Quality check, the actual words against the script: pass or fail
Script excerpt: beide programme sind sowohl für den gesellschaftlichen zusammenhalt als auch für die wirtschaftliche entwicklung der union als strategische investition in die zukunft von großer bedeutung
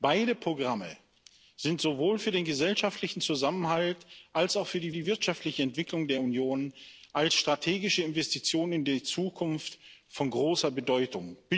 fail